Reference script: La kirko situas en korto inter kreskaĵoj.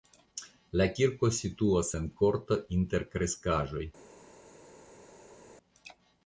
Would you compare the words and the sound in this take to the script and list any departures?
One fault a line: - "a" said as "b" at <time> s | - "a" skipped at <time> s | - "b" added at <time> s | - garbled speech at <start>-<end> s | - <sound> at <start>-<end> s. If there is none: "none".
none